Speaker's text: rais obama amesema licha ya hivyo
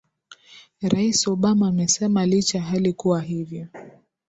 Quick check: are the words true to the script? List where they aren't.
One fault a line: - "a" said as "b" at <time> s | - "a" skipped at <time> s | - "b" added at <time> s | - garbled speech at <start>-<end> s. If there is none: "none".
- "hali kuwa" added at 2.6 s